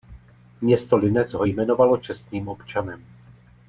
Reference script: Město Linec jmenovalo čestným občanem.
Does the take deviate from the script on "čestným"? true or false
false